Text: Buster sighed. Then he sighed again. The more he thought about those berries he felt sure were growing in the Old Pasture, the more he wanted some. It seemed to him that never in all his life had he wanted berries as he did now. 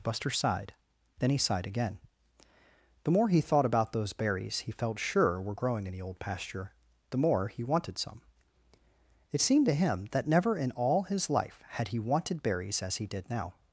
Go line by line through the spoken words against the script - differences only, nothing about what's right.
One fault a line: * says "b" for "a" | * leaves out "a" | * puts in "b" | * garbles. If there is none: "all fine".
all fine